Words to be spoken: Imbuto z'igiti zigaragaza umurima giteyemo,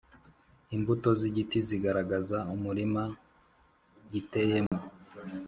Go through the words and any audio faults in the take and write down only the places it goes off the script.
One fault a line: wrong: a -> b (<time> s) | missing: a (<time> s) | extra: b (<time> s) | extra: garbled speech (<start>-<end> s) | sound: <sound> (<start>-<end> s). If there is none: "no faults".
sound: dropout (4.7-4.7 s)